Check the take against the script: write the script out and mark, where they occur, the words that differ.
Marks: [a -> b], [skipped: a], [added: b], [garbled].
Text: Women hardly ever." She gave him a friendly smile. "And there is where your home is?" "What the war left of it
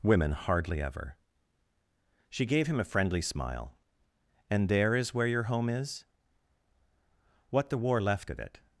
Women hardly ever." She gave him a friendly smile. "And there is where your home is?" "What the war left of it